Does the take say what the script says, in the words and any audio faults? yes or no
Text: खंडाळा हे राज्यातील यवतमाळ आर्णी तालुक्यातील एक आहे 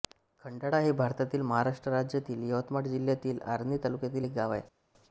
no